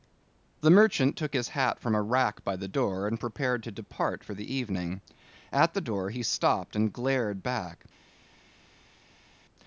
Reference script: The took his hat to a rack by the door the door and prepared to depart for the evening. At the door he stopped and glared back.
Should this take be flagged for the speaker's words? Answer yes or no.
yes